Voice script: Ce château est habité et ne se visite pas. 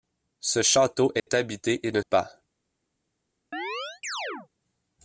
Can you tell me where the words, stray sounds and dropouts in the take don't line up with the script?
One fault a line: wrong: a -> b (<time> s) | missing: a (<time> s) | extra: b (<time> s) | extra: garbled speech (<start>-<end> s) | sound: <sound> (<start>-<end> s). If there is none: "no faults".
sound: dropout (1.2-1.3 s)
missing: se visite (2.0 s)
sound: chirp (3.5-4.5 s)